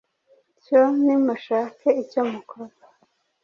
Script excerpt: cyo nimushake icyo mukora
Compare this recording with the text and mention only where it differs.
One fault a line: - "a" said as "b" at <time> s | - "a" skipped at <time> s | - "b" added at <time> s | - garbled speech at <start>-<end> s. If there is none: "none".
none